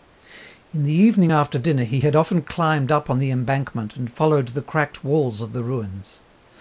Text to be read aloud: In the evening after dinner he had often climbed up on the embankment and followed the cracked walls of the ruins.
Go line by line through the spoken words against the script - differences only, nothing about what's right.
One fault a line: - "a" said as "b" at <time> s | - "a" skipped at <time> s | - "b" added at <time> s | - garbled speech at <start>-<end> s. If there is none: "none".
none